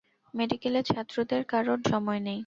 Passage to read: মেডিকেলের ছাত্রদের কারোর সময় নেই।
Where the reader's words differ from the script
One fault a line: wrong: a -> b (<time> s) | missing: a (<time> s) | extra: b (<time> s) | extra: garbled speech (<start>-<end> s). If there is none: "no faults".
no faults